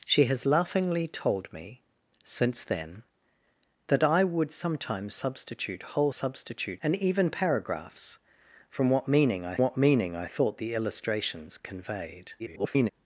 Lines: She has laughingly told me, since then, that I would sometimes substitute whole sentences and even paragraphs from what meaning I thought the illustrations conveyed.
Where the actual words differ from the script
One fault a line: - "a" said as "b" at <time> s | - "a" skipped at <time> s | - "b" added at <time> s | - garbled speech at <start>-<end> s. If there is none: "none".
- "sentences" said as "substitute" at 6.1 s
- "what meaning I" added at 9.6 s
- garbled speech at 12.4-12.9 s